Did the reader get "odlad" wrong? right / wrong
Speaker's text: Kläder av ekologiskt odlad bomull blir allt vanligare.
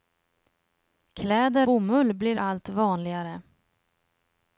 wrong